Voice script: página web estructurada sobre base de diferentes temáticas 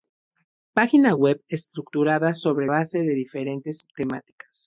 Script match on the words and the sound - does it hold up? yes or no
yes